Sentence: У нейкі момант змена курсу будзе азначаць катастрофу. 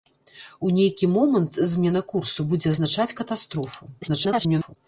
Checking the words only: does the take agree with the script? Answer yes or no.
no